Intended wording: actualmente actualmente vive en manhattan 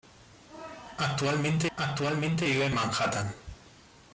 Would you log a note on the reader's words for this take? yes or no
no